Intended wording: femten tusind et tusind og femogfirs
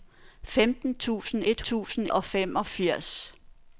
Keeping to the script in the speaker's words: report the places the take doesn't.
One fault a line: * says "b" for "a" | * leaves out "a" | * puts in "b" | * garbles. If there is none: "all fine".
all fine